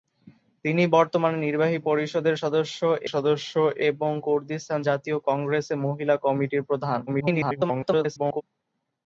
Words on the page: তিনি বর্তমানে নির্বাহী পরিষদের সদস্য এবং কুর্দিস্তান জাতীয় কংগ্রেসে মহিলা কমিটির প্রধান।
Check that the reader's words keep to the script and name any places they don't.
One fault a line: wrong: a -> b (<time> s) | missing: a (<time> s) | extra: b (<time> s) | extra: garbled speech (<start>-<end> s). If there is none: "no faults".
extra: সদস্য (3.1 s)
extra: garbled speech (7.1-8.4 s)